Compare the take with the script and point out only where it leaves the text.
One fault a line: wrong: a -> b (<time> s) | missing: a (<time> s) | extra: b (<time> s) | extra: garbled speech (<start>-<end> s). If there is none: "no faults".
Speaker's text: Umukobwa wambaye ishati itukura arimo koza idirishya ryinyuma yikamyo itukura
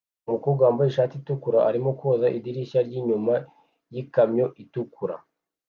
no faults